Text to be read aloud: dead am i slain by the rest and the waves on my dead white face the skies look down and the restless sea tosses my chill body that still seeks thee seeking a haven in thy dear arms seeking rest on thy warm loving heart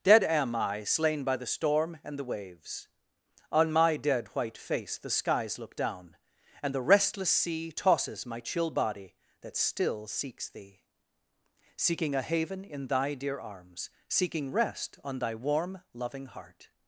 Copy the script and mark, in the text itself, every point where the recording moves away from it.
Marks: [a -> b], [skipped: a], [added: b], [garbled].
dead am i slain by the [rest -> storm] and the waves on my dead white face the skies look down and the restless sea tosses my chill body that still seeks thee seeking a haven in thy dear arms seeking rest on thy warm loving heart